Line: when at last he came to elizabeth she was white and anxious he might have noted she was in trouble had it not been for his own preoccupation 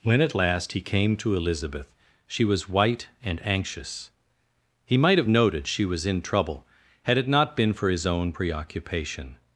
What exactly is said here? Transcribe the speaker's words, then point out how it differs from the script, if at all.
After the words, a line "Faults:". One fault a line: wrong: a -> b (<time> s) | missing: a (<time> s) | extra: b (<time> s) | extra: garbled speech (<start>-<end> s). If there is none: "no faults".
when at last he came to elizabeth she was white and anxious he might have noted she was in trouble had it not been for his own preoccupation
Faults:
no faults